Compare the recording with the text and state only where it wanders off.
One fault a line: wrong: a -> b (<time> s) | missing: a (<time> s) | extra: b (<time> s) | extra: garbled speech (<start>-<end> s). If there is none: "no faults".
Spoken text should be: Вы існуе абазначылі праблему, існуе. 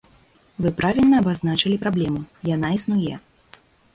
wrong: існуе -> правільна (0.8 s)
extra: яна (2.5 s)